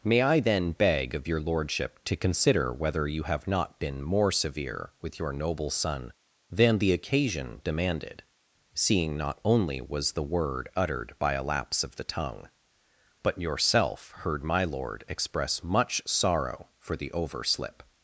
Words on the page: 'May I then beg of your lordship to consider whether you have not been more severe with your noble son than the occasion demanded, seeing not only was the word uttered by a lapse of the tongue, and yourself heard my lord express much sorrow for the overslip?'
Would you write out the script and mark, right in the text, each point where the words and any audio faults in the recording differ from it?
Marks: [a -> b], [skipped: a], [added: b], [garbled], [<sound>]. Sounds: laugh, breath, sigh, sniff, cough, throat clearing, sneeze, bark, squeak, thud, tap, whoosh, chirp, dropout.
'May I then beg of your lordship to consider whether you have not been more severe with your noble son than the occasion demanded, seeing not only was the word uttered by a lapse of the tongue, [and -> but] yourself heard my lord express much sorrow for the overslip?'